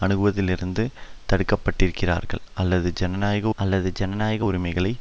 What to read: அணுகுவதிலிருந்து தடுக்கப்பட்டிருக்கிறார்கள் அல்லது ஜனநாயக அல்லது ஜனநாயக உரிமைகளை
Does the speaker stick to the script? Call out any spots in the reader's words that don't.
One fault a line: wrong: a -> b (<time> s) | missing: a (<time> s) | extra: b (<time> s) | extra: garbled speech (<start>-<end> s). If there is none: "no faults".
no faults